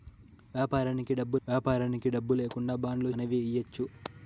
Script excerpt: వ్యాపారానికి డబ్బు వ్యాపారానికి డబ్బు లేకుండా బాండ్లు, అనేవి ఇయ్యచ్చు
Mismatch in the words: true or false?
false